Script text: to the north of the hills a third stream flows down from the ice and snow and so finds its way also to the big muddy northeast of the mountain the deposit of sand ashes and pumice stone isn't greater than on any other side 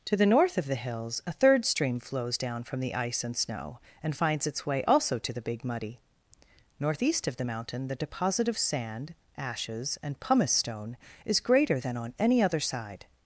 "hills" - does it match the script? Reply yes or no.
yes